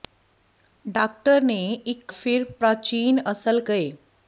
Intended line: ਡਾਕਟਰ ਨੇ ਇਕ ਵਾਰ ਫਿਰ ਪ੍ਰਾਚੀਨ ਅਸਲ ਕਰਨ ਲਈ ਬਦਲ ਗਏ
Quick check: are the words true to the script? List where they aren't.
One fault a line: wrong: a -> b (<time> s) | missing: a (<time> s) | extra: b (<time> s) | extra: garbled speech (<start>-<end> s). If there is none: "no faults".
missing: ਵਾਰ (2.1 s)
missing: ਕਰਨ ਲਈ ਬਦਲ (3.6 s)